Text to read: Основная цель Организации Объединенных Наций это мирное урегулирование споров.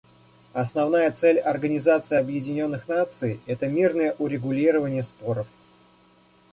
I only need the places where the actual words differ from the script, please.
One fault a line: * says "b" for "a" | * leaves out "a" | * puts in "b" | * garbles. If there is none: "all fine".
all fine